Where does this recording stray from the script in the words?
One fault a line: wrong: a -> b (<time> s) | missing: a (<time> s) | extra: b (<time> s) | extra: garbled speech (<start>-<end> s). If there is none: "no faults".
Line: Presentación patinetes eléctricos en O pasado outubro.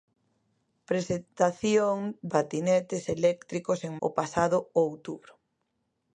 no faults